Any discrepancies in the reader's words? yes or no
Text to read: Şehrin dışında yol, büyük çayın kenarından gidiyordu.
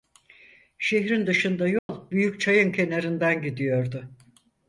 no